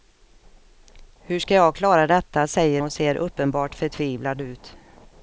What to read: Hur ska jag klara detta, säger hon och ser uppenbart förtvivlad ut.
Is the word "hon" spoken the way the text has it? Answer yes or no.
no